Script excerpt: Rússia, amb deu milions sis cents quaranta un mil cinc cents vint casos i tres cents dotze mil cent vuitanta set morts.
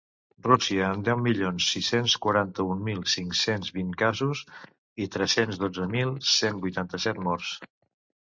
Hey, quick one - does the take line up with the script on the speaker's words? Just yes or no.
yes